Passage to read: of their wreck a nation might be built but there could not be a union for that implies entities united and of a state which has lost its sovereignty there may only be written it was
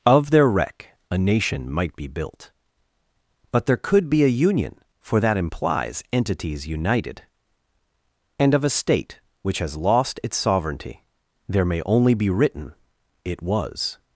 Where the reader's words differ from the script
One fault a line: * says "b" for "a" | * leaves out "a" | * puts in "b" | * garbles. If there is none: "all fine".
* leaves out "not"